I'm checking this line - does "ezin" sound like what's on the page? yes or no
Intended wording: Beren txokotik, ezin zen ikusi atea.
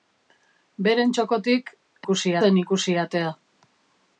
no